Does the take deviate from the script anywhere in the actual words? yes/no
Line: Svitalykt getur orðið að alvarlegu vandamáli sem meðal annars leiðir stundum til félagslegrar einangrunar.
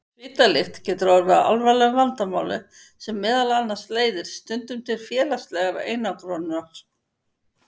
no